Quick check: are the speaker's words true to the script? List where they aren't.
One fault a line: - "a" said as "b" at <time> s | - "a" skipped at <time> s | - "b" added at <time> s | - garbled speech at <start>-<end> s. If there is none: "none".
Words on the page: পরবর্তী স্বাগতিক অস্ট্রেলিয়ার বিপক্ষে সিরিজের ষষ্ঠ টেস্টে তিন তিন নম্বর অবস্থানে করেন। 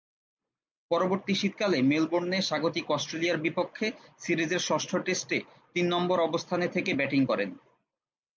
- "শীতকালে মেলবোর্নে" added at 1.4 s
- "তিন" skipped at 5.8 s
- "থেকে ব্যাটিং" added at 6.7 s